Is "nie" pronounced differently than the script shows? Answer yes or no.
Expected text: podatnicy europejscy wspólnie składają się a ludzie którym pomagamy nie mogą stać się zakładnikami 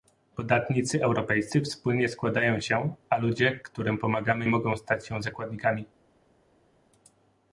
yes